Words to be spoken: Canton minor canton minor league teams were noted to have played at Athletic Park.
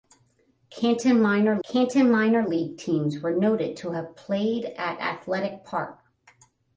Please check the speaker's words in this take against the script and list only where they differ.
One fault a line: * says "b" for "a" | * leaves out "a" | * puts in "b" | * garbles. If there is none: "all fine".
all fine